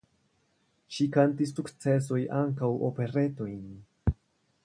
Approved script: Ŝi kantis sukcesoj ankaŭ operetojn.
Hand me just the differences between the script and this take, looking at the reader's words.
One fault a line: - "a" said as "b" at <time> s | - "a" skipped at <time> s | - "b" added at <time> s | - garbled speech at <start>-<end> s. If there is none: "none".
none